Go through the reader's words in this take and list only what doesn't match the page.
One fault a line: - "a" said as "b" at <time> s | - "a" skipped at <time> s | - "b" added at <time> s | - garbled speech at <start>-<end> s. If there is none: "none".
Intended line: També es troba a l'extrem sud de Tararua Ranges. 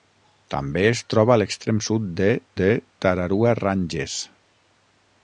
- "de" added at 2.6 s